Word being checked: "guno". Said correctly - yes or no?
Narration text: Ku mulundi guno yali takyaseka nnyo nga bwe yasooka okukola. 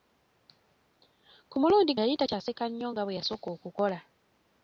no